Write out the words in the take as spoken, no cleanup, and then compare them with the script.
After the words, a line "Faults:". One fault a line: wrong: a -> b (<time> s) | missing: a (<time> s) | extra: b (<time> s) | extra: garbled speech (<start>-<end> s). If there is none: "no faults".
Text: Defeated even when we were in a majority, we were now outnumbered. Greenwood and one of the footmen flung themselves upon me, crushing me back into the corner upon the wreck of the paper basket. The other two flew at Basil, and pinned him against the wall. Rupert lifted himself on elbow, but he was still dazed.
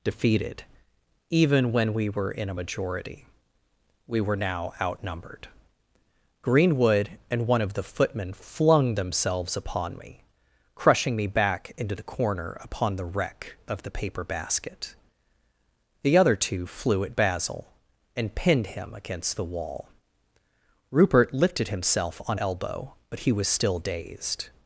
Defeated even when we were in a majority, we were now outnumbered. Greenwood and one of the footmen flung themselves upon me, crushing me back into the corner upon the wreck of the paper basket. The other two flew at Basil, and pinned him against the wall. Rupert lifted himself on elbow, but he was still dazed.
Faults:
no faults